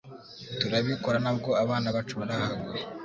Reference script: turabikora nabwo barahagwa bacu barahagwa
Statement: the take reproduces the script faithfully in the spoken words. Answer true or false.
false